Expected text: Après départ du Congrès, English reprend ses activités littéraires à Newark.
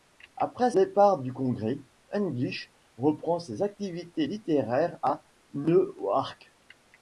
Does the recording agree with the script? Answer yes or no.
yes